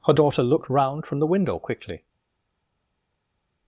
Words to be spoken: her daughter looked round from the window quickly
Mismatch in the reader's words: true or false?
false